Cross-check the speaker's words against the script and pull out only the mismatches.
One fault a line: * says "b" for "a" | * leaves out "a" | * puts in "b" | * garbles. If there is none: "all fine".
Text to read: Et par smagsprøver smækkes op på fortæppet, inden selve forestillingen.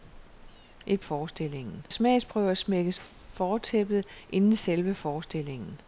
* says "forestillingen" for "par"
* leaves out "op på"